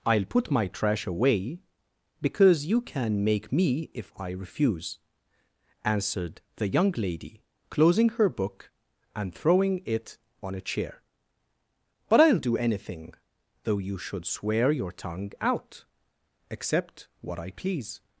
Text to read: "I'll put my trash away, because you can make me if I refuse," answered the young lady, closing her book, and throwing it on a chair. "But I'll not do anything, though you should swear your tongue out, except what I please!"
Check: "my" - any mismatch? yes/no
no